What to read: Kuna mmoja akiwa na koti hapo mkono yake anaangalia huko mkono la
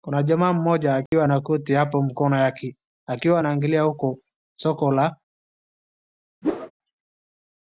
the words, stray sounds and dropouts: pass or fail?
fail